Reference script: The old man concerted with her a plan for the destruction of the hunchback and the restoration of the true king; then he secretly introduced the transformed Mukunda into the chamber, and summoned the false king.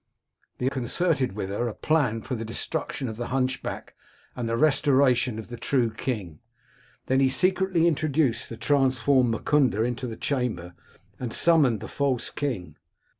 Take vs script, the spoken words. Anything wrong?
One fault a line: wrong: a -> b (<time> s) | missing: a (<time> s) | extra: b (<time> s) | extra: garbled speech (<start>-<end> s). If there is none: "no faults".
missing: old man (0.7 s)